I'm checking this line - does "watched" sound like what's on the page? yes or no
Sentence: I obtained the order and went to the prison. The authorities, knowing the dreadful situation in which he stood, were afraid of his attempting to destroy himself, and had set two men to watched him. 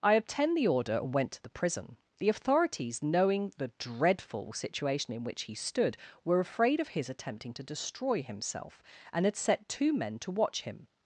no